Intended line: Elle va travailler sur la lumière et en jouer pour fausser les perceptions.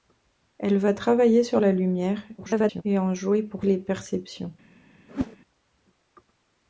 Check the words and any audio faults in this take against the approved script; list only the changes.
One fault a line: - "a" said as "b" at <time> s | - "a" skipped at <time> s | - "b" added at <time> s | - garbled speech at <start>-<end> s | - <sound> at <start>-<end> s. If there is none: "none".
- garbled speech at 2.4-2.8 s
- "fausser" skipped at 3.6 s
- whoosh at 5.1-5.4 s